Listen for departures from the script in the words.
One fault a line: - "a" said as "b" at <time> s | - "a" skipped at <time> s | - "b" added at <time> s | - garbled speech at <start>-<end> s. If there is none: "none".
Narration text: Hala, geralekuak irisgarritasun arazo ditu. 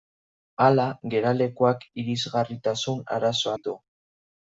none